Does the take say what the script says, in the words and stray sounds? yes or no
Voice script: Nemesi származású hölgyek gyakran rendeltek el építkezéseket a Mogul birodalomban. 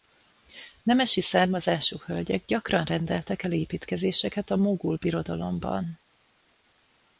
yes